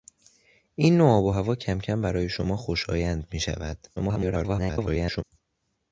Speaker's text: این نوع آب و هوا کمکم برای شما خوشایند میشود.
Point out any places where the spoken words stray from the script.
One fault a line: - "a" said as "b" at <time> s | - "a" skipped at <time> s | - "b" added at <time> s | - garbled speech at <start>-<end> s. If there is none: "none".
- garbled speech at 4.0-5.2 s